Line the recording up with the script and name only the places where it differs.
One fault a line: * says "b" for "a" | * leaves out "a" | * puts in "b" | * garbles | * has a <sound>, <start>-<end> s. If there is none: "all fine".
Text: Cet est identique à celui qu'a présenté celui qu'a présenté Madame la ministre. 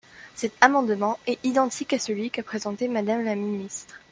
* puts in "amendement"
* leaves out "celui qu'a présenté"